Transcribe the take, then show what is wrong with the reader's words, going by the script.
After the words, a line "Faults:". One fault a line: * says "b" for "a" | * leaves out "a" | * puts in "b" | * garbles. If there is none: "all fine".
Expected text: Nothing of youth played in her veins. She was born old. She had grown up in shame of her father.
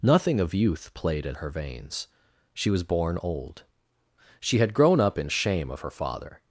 Nothing of youth played in her veins. She was born old. She had grown up in shame of her father.
Faults:
all fine